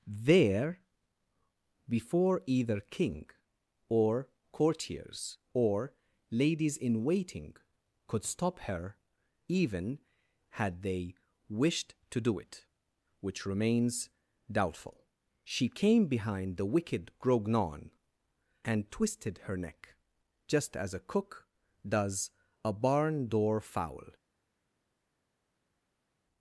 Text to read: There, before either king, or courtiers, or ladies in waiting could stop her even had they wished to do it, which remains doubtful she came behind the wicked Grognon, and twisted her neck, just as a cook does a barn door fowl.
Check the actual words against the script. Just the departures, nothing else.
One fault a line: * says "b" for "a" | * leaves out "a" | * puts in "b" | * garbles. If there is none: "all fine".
all fine